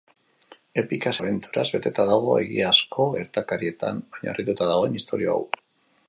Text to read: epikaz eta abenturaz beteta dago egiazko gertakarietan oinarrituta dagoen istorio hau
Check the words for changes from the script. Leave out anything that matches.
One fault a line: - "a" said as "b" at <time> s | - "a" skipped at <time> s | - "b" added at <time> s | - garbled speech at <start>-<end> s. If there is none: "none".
- "eta" skipped at 1.1 s